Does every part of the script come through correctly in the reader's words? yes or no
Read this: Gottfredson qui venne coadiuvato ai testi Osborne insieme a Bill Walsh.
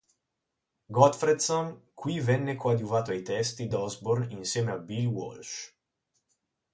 yes